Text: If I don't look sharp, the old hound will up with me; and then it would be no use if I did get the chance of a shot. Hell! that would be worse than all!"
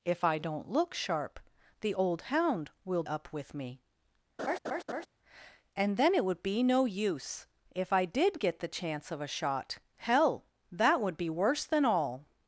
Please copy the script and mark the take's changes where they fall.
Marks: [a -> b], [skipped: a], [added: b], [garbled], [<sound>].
If I don't look sharp, the old hound will up with me; [laugh] and then it would be no use if I did get the chance of a shot. Hell! that would be worse than all!"